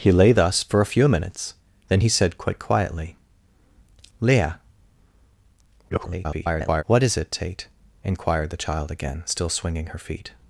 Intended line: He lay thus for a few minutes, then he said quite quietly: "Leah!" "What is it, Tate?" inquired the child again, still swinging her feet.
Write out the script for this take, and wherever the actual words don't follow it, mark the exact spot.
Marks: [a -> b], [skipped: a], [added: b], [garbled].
He lay thus for a few minutes, then he said quite quietly: "Leah!" [garbled] "What is it, Tate?" inquired the child again, still swinging her feet.